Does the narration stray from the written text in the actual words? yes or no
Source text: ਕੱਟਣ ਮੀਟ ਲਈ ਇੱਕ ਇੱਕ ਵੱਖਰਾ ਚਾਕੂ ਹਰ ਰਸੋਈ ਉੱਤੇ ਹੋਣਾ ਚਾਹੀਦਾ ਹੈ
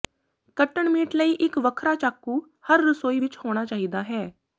yes